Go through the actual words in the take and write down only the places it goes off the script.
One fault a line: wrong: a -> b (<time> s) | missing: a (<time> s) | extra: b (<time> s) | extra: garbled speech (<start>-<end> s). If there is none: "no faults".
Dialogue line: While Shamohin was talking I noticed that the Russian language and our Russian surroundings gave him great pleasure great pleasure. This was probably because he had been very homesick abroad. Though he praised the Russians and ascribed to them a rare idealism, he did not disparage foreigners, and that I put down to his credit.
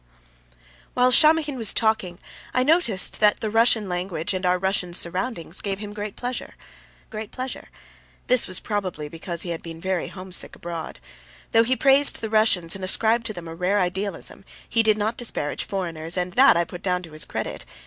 no faults